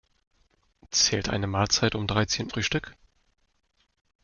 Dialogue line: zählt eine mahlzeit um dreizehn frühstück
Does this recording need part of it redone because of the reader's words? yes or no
no